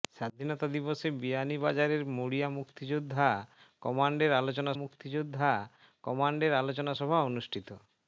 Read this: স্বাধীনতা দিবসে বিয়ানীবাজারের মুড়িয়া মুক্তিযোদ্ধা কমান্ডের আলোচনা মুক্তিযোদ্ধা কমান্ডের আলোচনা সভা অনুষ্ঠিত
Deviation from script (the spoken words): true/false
false